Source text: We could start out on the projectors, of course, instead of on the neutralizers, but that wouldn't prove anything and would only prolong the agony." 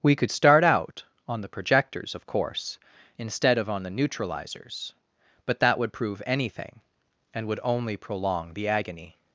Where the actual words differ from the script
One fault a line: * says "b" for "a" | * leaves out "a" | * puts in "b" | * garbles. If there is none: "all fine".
* says "would" for "wouldn't"